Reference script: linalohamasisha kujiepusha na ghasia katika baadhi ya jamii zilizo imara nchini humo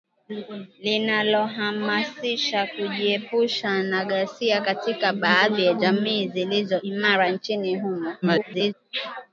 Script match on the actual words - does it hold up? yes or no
no